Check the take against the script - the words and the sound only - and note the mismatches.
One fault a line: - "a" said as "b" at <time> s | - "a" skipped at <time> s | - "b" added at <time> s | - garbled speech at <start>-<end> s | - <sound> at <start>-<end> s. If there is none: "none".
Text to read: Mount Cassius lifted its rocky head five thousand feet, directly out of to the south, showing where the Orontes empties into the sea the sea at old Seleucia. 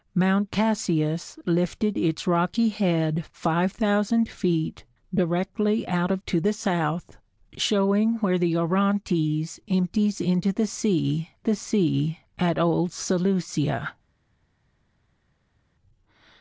none